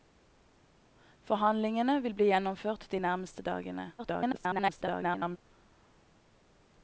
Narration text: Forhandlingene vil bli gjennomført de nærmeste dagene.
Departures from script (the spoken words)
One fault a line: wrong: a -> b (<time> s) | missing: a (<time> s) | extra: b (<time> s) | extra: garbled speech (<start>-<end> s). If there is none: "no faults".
extra: garbled speech (4.0-5.4 s)